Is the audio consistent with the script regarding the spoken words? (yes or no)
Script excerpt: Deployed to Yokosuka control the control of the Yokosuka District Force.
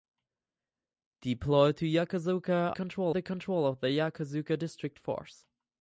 yes